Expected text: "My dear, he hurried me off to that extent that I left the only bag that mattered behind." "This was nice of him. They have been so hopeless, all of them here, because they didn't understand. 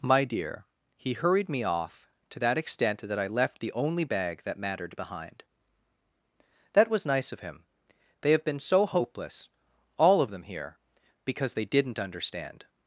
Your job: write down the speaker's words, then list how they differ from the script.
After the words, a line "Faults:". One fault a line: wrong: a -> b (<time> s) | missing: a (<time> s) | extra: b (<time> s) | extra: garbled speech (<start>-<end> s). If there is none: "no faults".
"My dear, he hurried me off to that extent that I left the only bag that mattered behind." "That was nice of him. They have been so hopeless, all of them here, because they didn't understand.
Faults:
wrong: This -> That (6.7 s)